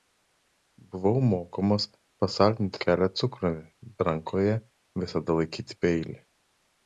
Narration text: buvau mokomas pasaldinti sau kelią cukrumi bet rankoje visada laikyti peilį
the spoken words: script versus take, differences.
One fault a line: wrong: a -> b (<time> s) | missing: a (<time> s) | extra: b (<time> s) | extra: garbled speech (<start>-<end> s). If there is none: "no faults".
missing: sau (2.8 s)
missing: bet (3.6 s)